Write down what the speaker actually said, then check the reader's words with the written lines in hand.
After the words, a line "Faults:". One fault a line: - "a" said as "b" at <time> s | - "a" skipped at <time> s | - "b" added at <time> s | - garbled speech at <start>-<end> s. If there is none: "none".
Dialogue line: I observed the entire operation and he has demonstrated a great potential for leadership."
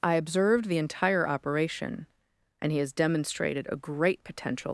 I observed the entire operation and he has demonstrated a great potential."
Faults:
- "for leadership" skipped at 4.7 s